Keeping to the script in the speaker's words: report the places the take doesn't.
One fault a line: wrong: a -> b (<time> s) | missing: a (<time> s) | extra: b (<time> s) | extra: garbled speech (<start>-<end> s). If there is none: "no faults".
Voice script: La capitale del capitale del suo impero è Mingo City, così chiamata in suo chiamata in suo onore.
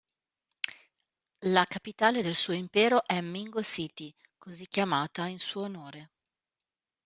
missing: capitale del (2.3 s)
missing: chiamata in suo (5.6 s)